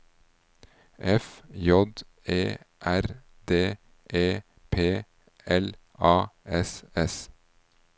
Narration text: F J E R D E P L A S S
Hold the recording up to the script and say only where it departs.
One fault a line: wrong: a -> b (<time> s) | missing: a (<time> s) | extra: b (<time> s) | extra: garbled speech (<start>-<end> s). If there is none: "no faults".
no faults